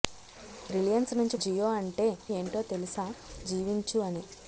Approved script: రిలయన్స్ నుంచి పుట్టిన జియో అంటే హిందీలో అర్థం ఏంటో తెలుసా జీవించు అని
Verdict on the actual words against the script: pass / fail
fail